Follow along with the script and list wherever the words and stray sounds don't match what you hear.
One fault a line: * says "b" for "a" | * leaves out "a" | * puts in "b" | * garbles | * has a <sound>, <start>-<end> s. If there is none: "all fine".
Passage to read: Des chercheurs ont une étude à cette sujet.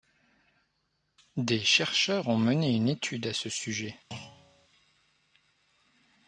* puts in "mené"
* says "ce" for "cette"
* has a thud, 4.1-4.7 s